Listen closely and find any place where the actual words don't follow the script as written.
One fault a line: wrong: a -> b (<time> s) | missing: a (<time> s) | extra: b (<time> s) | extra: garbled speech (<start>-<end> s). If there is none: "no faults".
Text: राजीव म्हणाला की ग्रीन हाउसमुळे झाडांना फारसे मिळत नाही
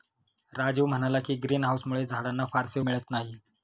no faults